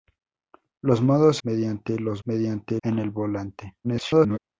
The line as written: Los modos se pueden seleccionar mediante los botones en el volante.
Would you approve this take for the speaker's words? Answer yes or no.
no